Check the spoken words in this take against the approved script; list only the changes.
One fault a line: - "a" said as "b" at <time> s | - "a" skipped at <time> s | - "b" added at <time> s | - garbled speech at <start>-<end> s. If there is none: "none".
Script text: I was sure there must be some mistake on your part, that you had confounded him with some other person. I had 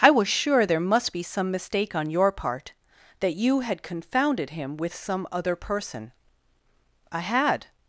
none